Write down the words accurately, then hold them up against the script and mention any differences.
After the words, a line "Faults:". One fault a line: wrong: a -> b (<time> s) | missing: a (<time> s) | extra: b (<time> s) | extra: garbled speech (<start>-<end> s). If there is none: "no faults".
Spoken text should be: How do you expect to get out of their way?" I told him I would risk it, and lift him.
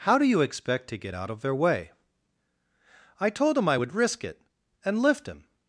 How do you expect to get out of their way?" I told him I would risk it, and lift him.
Faults:
no faults